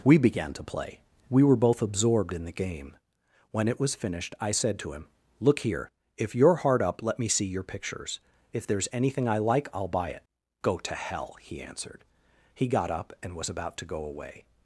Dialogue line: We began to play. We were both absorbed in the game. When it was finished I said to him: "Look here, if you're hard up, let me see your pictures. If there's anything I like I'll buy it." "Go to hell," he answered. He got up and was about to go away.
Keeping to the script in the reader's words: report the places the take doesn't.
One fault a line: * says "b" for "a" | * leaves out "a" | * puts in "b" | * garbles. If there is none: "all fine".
all fine